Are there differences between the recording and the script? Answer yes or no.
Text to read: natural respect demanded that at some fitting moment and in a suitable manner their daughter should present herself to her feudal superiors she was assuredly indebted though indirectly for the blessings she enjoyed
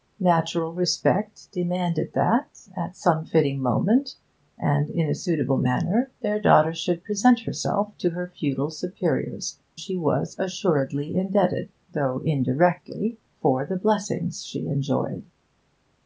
no